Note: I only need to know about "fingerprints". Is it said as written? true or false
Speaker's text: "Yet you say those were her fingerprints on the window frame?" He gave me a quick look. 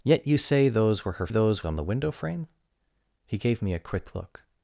false